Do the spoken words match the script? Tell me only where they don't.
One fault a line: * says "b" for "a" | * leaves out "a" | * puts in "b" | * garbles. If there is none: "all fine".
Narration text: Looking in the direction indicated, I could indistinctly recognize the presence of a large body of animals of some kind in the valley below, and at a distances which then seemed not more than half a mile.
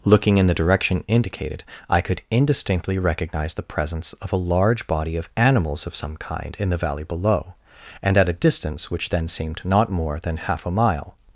* says "distance" for "distances"